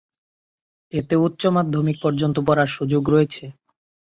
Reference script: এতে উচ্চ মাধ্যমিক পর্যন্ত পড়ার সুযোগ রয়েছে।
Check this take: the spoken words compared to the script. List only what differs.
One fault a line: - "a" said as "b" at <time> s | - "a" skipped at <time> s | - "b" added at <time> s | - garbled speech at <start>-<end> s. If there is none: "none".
none